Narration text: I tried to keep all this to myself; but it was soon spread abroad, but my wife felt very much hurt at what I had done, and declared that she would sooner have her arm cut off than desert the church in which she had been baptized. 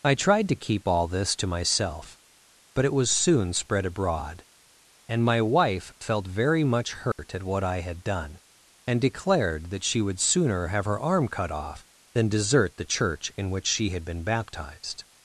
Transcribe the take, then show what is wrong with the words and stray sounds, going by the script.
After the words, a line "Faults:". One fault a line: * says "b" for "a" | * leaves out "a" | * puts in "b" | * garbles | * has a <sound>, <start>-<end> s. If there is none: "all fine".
I tried to keep all this to myself; but it was soon spread abroad, and my wife felt very much hurt at what I had done, and declared that she would sooner have her arm cut off than desert the church in which she had been baptized.
Faults:
* says "and" for "but"
* has a dropout, 7.1-7.2 s